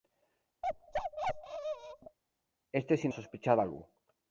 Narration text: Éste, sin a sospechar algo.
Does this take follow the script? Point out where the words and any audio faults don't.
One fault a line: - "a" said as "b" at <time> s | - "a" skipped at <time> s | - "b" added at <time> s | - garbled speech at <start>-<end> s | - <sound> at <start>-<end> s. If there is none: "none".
- bark at 0.6-2.2 s